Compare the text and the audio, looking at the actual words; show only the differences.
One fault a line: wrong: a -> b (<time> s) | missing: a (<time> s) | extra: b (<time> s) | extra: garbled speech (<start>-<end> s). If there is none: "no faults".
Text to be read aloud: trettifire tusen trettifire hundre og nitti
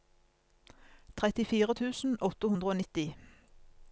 wrong: trettifire -> åtte (2.3 s)